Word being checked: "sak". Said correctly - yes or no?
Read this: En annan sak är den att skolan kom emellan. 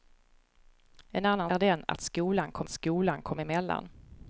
no